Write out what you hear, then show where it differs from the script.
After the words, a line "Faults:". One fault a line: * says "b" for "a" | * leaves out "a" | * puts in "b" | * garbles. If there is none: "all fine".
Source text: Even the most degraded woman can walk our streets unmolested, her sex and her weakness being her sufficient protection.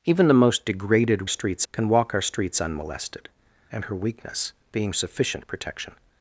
Even the most degraded streets can walk our streets unmolested, and her weakness being sufficient protection.
Faults:
* says "streets" for "woman"
* leaves out "her sex"
* leaves out "her"